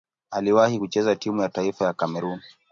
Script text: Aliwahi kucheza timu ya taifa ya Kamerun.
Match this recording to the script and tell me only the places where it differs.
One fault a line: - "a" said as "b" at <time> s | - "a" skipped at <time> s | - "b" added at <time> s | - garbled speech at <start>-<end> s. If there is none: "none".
none